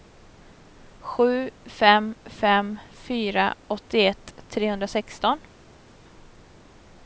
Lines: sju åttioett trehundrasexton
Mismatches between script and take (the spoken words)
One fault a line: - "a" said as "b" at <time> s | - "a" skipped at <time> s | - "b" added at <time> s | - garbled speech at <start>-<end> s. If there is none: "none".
- "fem fem fyra" added at 1.6 s